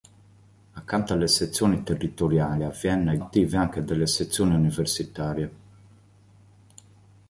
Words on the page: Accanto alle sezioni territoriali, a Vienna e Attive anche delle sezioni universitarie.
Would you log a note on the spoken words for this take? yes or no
no